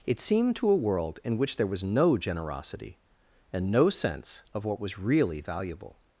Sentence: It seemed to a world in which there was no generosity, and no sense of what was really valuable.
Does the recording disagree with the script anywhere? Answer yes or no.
no